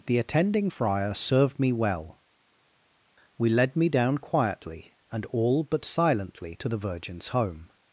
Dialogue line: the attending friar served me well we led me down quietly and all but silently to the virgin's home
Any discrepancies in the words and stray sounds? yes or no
no